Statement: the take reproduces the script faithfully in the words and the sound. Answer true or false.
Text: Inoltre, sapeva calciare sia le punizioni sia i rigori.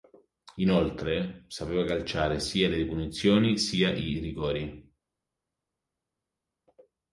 true